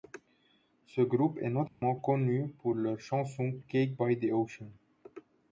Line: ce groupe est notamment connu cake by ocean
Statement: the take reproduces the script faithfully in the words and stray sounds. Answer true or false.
false